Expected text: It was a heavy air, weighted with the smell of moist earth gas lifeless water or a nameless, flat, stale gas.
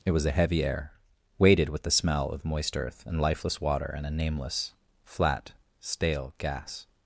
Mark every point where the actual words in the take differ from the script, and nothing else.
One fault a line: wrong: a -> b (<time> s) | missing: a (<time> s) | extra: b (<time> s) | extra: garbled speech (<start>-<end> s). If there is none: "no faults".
wrong: gas -> and (3.0 s)
wrong: or -> and (3.9 s)